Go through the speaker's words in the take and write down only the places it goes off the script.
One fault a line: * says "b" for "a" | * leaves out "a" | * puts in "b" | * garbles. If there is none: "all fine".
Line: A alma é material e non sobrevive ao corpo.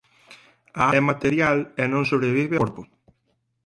* leaves out "alma"
* leaves out "ao"